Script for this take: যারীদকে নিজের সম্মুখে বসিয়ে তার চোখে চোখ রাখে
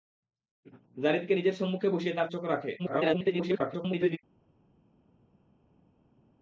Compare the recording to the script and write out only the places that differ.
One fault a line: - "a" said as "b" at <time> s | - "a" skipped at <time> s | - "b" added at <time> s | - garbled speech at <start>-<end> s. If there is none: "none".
- "চোখে" skipped at 2.3 s
- garbled speech at 2.8-4.2 s